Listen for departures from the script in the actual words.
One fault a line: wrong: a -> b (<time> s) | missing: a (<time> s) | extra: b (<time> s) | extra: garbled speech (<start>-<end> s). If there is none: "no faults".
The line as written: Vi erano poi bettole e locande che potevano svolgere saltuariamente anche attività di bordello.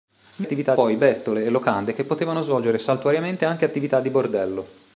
wrong: erano -> attività (0.4 s)